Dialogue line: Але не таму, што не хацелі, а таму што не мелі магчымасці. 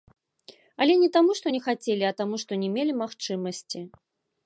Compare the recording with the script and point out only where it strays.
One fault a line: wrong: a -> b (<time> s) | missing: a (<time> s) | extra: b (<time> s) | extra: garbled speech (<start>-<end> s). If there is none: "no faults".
no faults